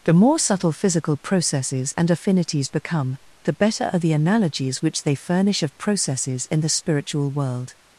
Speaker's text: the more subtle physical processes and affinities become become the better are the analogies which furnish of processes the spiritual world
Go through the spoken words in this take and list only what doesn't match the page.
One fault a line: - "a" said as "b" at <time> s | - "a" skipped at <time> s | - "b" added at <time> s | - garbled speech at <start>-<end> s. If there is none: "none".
- "become" skipped at 3.2 s
- "they" added at 5.0 s
- "in" added at 6.5 s